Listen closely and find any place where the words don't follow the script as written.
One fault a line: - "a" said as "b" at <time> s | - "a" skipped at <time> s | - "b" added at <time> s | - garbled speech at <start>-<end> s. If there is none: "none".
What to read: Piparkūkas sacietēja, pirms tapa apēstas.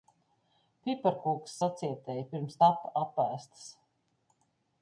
none